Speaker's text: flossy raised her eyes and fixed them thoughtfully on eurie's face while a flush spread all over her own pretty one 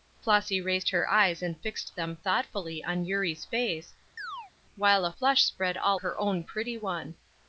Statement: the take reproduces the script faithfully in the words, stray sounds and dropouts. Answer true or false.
false